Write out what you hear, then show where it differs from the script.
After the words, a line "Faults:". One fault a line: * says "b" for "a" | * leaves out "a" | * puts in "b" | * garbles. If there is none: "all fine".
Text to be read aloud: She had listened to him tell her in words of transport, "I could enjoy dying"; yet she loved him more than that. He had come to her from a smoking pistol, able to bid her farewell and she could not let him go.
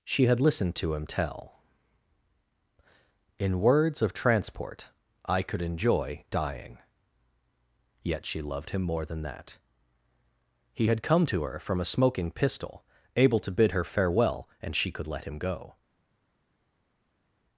She had listened to him tell in words of transport, "I could enjoy dying"; yet she loved him more than that. He had come to her from a smoking pistol, able to bid her farewell and she could let him go.
Faults:
* leaves out "her"
* leaves out "not"